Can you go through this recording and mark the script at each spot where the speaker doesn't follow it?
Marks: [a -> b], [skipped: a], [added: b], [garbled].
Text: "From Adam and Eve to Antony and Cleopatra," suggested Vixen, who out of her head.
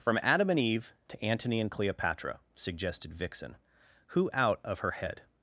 "From Adam and Eve to Antony and Cleopatra," suggested Vixen, who out of her head.